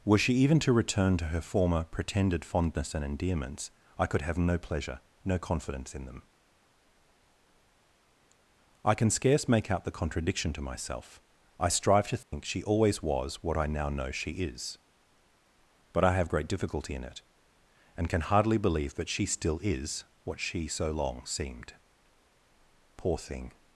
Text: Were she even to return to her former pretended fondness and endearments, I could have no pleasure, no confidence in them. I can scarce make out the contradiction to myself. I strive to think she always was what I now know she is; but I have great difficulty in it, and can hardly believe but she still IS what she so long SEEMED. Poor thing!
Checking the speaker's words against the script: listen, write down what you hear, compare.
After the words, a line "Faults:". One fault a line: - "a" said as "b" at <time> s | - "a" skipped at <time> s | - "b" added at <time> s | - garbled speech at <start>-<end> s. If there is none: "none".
Were she even to return to her former pretended fondness and endearments, I could have no pleasure, no confidence in them. I can scarce make out the contradiction to myself. I strive to think she always was what I now know she is; but I have great difficulty in it, and can hardly believe that she still IS what she so long SEEMED. Poor thing!
Faults:
- "but" said as "that" at 18.9 s